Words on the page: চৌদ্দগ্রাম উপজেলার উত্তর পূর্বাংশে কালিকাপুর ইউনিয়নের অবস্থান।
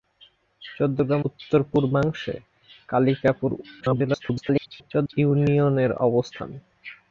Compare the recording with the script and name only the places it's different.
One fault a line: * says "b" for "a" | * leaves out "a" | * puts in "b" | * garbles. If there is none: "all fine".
* leaves out "উপজেলার"
* garbles